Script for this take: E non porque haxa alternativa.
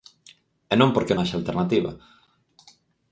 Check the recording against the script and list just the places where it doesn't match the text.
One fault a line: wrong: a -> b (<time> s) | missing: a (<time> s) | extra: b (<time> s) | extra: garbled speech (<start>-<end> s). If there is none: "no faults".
no faults